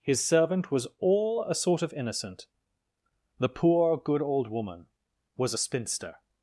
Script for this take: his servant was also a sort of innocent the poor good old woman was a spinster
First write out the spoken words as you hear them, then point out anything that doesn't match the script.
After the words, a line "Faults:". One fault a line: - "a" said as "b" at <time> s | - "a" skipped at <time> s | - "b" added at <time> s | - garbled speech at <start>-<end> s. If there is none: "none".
his servant was all a sort of innocent the poor good old woman was a spinster
Faults:
- "also" said as "all" at 1.0 s